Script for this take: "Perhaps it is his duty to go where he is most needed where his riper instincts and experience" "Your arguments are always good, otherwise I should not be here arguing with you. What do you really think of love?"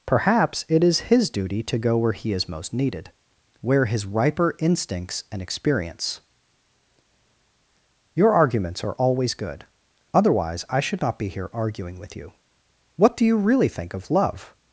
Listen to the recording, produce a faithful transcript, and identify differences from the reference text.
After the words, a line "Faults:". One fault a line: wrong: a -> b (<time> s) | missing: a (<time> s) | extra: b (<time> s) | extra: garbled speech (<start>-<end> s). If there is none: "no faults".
"Perhaps it is his duty to go where he is most needed where his riper instincts and experience" "Your arguments are always good, otherwise I should not be here arguing with you. What do you really think of love?"
Faults:
no faults